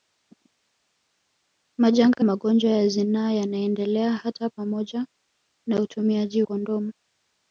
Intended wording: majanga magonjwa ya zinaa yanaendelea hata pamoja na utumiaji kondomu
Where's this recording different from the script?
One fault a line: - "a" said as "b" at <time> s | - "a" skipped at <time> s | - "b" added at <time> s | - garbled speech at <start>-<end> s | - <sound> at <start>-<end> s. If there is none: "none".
none